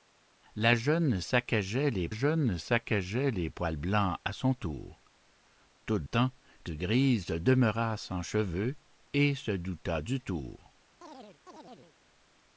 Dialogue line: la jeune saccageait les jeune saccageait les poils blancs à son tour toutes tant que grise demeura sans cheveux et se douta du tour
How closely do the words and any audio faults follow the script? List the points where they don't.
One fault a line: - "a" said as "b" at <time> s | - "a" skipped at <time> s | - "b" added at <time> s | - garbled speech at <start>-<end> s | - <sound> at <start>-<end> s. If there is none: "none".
- chirp at 11.0-12.0 s